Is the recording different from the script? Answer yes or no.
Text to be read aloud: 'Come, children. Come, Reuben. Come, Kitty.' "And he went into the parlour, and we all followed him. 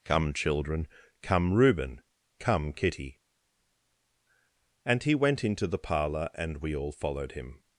no